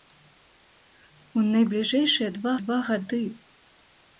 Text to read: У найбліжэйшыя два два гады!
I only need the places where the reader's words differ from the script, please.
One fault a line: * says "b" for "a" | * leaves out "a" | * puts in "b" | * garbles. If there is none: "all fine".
all fine